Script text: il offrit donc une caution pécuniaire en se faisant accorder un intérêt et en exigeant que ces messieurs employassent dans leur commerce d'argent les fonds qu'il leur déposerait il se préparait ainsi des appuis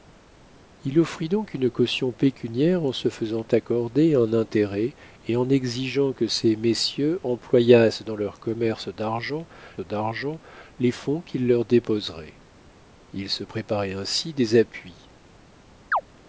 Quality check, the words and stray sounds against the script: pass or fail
fail